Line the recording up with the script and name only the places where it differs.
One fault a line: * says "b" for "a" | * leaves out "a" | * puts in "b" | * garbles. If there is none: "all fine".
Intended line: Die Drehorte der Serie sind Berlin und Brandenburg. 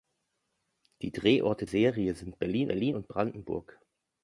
* leaves out "der"
* puts in "Berlin"